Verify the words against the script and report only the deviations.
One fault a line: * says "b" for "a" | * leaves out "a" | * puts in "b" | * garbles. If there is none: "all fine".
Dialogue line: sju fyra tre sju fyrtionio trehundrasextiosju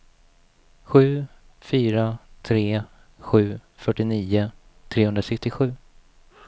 all fine